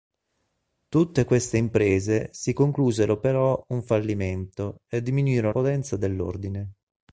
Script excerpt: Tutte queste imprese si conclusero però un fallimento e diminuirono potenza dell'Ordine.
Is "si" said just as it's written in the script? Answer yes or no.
yes